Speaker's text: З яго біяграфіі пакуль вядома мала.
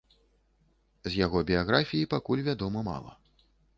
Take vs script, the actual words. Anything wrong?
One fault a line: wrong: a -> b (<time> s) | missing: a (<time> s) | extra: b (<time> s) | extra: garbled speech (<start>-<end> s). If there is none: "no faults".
no faults